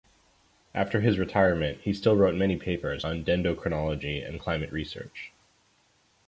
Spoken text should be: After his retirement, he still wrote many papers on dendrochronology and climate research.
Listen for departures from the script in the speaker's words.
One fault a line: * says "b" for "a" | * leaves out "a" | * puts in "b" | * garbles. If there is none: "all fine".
all fine